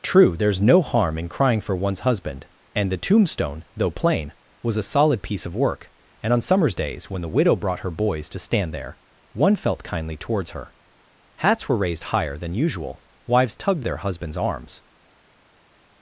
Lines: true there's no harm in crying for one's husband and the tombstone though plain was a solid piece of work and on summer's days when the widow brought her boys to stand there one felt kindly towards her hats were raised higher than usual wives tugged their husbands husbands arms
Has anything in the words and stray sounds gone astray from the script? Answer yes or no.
yes